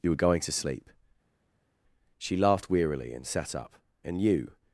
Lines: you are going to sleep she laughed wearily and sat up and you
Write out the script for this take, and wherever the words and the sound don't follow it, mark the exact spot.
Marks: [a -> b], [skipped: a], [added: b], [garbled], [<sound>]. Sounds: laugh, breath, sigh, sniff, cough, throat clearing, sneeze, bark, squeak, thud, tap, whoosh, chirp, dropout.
you [are -> were] going to sleep she laughed wearily and sat up and you